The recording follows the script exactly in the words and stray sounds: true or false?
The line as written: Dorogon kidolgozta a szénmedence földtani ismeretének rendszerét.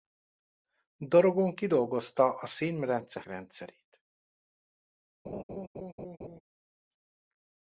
false